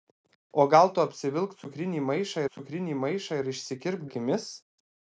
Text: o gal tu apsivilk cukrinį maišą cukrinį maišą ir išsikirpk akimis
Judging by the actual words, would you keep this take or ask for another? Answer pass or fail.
pass